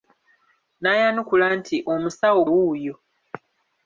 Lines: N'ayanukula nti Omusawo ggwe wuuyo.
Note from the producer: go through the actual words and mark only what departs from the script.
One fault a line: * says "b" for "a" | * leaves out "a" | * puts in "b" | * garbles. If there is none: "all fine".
* leaves out "ggwe"